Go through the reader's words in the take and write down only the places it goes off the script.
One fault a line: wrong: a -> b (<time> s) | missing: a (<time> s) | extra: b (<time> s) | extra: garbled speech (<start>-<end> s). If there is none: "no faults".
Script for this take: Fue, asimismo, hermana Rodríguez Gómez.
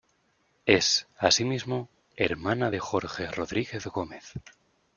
wrong: Fue -> Es (0.7 s)
extra: de Jorge (2.7 s)